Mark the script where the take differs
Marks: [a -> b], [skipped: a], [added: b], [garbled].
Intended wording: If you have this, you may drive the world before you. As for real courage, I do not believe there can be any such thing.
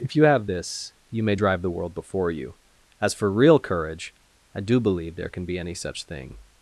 If you have this, you may drive the world before you. As for real courage, I do [skipped: not] believe there can be any such thing.